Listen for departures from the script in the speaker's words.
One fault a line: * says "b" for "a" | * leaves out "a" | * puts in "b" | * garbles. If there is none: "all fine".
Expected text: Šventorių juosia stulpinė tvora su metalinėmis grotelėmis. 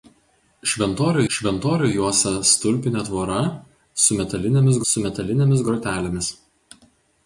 * puts in "šventorių"
* puts in "su metalinėmis"